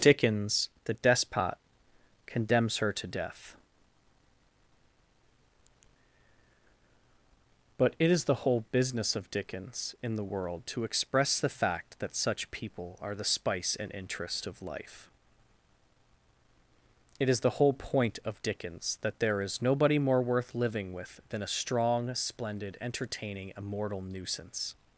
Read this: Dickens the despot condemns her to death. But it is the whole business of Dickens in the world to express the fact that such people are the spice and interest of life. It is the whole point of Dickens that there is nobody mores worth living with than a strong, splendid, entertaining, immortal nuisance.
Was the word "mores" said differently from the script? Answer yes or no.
yes